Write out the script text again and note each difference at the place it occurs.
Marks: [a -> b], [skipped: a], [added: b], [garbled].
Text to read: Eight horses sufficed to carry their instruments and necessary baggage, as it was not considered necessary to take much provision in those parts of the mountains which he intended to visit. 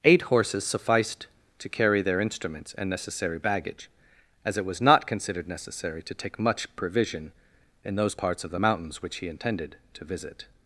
Eight horses sufficed to carry their instruments and necessary baggage, as it was not considered necessary to take much provision in those parts of the mountains which he intended to visit.